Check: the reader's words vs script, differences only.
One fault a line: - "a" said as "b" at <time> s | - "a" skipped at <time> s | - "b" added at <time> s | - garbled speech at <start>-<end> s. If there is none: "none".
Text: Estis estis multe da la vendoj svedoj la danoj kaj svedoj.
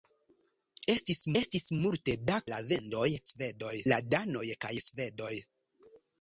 none